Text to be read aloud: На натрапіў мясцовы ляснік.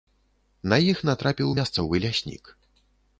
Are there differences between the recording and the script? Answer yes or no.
yes